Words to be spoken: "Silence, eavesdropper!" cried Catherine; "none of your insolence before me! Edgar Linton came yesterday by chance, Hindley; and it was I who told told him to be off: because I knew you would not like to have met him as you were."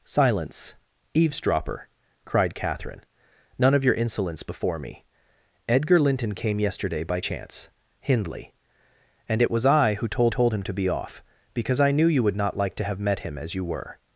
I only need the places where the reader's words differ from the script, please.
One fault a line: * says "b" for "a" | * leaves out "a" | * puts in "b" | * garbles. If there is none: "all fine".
all fine